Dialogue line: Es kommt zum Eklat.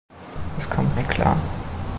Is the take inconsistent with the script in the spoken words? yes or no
yes